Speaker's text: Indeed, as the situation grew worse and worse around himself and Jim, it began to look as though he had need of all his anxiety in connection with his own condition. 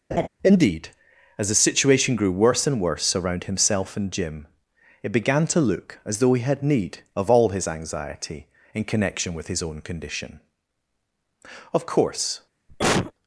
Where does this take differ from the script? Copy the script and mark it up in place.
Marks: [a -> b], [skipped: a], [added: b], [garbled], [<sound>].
[laugh] Indeed, as the situation grew worse and worse around himself and Jim, it began to look as though he had need of all his anxiety in connection with his own condition. [added: Of course] [cough]